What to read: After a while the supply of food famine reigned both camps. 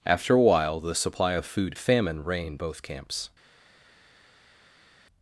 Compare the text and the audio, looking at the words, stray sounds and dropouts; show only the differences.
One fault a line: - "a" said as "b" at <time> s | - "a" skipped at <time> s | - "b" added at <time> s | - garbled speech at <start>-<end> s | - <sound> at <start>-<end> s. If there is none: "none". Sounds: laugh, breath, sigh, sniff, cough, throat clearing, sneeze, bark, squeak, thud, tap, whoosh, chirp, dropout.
none